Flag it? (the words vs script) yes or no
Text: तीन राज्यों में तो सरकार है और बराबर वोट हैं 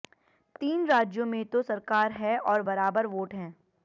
no